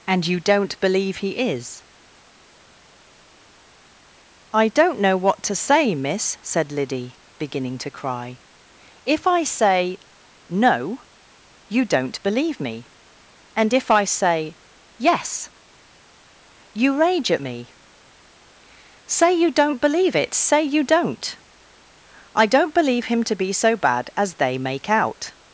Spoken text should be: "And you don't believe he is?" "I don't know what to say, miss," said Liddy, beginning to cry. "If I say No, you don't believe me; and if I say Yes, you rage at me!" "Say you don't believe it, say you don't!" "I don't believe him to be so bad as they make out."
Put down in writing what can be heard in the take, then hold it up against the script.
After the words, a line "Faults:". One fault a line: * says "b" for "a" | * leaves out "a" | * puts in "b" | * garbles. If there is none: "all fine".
"And you don't believe he is?" "I don't know what to say, miss," said Liddy, beginning to cry. "If I say No, you don't believe me; and if I say Yes, you rage at me!" "Say you don't believe it, say you don't!" "I don't believe him to be so bad as they make out."
Faults:
all fine